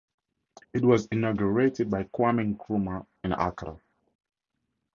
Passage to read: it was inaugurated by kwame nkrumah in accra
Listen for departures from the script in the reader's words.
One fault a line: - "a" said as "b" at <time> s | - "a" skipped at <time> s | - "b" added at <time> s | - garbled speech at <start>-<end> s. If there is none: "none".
none